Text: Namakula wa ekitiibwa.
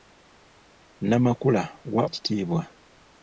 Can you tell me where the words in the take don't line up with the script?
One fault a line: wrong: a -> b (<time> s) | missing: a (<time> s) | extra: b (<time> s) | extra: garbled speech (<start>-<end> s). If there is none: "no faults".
no faults